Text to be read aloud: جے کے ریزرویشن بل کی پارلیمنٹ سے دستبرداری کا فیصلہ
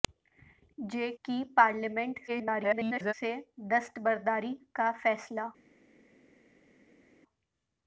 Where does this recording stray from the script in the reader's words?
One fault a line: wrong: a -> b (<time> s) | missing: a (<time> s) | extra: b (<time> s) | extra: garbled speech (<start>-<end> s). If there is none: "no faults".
missing: کے ریزرویشن بل (1.1 s)
extra: garbled speech (2.3-3.1 s)